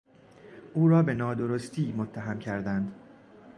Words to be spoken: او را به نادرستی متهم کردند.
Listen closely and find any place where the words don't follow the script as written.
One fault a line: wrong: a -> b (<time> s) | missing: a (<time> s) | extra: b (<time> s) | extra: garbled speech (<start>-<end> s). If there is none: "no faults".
no faults